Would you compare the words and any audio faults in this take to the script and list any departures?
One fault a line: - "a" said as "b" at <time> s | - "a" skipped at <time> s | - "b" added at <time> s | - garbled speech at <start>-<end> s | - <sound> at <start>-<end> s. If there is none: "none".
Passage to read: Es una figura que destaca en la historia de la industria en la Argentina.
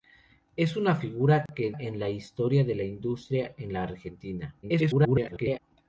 - dropout at 1.5-1.5 s
- "destaca" skipped at 1.7 s
- garbled speech at 4.6-5.6 s